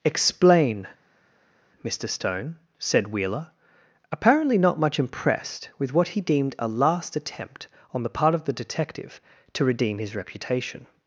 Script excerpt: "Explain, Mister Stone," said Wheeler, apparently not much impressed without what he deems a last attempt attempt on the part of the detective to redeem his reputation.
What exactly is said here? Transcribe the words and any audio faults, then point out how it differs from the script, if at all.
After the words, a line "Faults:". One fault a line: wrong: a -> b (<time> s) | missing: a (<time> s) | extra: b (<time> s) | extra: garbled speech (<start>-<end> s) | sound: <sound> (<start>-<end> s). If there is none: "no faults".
"Explain, Mister Stone," said Wheeler, apparently not much impressed with what he deemed a last attempt on the part of the detective to redeem his reputation.
Faults:
wrong: without -> with (5.8 s)
wrong: deems -> deemed (6.2 s)
missing: attempt (7.7 s)